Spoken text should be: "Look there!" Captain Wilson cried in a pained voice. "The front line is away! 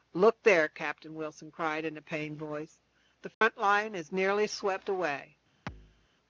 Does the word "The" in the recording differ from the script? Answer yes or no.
no